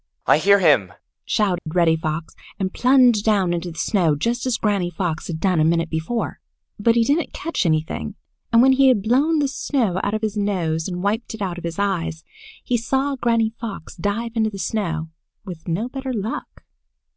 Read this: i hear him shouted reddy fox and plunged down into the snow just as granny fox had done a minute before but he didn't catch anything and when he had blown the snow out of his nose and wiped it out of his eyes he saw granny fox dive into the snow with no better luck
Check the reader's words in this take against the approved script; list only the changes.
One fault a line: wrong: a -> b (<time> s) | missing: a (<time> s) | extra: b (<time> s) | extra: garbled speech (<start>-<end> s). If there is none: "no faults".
no faults